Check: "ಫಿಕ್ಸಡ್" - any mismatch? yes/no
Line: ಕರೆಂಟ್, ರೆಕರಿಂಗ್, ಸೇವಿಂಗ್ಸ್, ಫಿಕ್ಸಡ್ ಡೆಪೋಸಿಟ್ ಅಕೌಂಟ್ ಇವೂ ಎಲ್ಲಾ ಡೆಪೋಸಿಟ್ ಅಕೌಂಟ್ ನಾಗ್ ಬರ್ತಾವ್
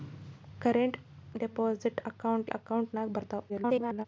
yes